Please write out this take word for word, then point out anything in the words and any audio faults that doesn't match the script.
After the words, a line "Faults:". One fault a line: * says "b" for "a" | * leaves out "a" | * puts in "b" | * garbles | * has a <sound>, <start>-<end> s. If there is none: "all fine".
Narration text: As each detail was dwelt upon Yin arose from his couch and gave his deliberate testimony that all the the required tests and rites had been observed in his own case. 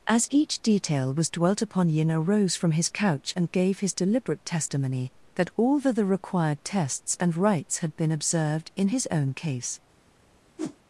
As each detail was dwelt upon Yin arose from his couch and gave his deliberate testimony that all the the required tests and rites had been observed in his own case.
Faults:
* has a whoosh, 10.6-10.8 s